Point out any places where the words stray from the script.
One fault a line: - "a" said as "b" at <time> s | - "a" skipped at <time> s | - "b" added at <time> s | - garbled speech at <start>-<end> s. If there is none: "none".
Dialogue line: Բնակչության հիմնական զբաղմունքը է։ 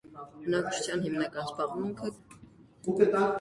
none